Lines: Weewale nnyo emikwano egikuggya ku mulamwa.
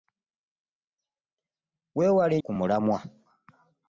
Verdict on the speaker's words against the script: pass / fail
fail